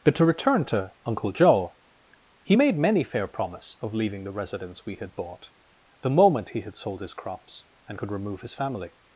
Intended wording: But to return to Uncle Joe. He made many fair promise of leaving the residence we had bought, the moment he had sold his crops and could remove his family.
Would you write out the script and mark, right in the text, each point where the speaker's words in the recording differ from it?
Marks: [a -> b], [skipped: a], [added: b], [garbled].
But to return to Uncle Joe. He made many fair promise of leaving the residence we had bought, the moment he had sold his crops and could remove his family.